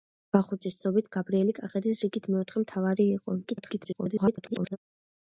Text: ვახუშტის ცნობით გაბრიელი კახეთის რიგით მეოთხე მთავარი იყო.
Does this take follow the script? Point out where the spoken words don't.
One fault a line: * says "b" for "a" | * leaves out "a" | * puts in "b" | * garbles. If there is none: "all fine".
* garbles